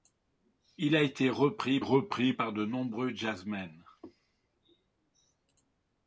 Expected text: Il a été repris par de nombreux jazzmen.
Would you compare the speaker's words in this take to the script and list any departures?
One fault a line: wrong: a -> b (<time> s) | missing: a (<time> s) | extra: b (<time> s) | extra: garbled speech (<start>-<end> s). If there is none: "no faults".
extra: repris (1.8 s)